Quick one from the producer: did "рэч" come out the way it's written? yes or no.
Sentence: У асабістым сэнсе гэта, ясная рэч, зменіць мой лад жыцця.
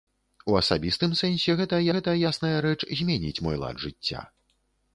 yes